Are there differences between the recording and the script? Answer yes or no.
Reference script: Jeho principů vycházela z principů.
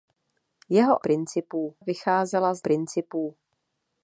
no